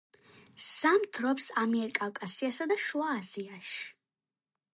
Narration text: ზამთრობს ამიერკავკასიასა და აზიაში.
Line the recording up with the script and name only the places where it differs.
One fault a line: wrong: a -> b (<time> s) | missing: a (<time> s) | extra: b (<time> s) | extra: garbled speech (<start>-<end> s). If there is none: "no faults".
extra: შუა (2.8 s)